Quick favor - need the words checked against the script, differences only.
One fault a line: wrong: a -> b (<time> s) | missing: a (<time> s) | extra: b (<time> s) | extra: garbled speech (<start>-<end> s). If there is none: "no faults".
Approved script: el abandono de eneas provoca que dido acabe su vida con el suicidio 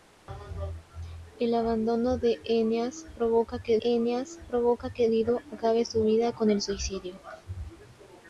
extra: eneas provoca que (3.8 s)